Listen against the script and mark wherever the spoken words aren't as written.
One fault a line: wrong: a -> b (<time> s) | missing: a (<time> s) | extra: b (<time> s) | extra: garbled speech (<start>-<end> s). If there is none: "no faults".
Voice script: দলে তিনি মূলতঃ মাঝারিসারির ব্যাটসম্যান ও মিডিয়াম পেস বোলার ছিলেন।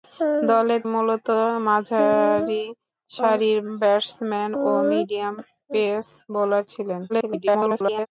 missing: তিনি (0.8 s)
extra: garbled speech (7.1-8.1 s)